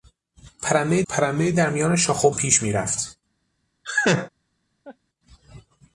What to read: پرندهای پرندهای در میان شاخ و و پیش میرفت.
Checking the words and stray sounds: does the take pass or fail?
fail